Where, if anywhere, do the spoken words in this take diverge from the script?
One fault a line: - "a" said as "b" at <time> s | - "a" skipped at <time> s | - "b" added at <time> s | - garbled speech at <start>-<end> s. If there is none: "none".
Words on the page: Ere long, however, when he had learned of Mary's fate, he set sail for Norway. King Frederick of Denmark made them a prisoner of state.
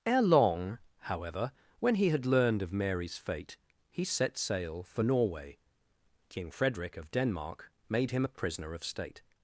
- "them" said as "him" at 8.1 s